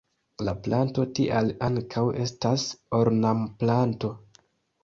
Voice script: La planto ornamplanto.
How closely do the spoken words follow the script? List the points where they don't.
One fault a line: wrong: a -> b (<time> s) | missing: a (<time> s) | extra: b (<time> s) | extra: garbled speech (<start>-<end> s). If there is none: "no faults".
extra: tial ankaŭ estas (1.2 s)